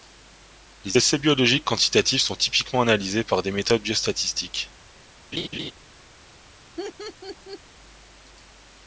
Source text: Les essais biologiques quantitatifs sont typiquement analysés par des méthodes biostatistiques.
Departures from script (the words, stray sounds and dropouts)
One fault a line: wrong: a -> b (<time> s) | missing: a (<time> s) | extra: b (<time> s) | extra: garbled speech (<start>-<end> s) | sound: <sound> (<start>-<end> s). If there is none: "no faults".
sound: laugh (5.3-5.7 s)
sound: laugh (6.8-7.6 s)